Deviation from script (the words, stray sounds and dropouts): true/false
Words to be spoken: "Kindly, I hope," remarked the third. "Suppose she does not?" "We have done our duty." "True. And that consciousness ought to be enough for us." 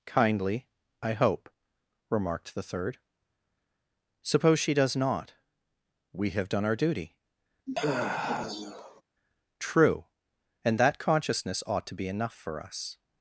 true